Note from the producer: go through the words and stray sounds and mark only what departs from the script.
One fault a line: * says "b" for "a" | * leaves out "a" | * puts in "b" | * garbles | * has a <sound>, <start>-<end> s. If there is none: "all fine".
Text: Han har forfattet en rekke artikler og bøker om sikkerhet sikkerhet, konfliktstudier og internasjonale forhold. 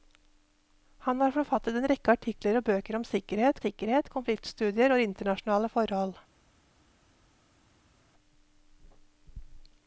all fine